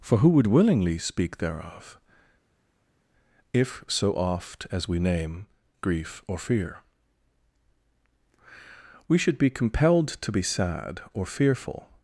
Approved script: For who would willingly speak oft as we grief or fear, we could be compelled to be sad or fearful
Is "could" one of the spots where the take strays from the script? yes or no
yes